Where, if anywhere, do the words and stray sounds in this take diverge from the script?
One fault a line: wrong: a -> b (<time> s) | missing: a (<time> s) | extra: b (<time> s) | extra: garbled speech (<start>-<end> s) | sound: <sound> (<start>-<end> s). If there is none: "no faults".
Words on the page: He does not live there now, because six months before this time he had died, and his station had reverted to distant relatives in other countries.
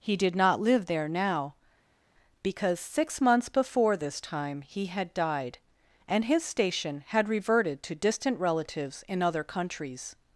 wrong: does -> did (0.2 s)